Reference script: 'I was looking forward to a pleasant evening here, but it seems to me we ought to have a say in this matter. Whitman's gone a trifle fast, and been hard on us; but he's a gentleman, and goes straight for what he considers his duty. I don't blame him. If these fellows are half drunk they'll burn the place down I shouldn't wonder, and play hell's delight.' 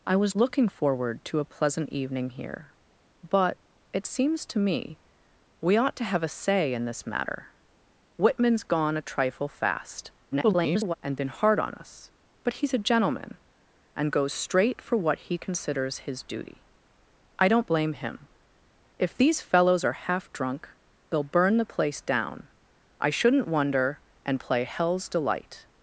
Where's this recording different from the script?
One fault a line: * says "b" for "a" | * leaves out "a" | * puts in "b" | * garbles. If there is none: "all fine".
* garbles